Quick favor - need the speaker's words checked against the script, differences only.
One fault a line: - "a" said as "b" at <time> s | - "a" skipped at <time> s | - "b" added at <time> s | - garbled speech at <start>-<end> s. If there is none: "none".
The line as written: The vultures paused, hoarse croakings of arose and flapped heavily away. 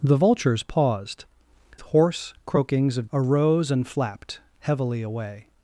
none